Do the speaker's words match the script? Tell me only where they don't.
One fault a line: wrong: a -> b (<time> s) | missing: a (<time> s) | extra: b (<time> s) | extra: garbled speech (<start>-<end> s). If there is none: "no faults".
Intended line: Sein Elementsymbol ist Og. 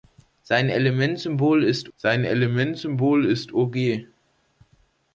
extra: sein Elementsymbol ist (1.9 s)